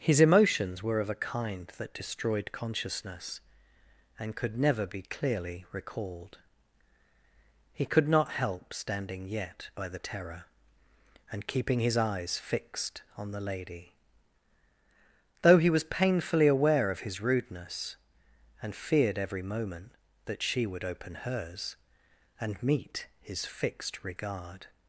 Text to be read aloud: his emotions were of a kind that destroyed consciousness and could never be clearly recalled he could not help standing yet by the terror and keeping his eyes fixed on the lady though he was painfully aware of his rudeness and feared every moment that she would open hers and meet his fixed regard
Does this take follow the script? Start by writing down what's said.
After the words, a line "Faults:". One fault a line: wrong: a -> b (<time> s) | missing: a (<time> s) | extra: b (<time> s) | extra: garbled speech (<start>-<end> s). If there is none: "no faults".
his emotions were of a kind that destroyed consciousness and could never be clearly recalled he could not help standing yet by the terror and keeping his eyes fixed on the lady though he was painfully aware of his rudeness and feared every moment that she would open hers and meet his fixed regard
Faults:
no faults